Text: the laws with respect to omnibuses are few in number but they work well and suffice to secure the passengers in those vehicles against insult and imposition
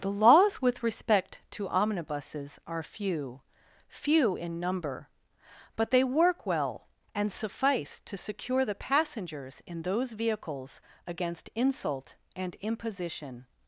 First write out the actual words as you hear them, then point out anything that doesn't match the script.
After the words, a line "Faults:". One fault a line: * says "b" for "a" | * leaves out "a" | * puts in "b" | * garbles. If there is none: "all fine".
the laws with respect to omnibuses are few few in number but they work well and suffice to secure the passengers in those vehicles against insult and imposition
Faults:
* puts in "few"